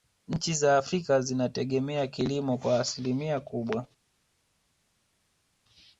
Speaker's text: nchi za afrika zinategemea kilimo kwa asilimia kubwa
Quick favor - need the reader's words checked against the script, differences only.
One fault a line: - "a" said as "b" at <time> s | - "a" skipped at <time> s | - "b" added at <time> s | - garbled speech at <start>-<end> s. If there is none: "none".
none